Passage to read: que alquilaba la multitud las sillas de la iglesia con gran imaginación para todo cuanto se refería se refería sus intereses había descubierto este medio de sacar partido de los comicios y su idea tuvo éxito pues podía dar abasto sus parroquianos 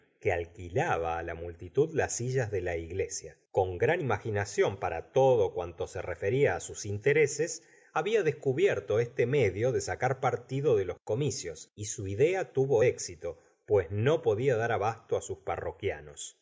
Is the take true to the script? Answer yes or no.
no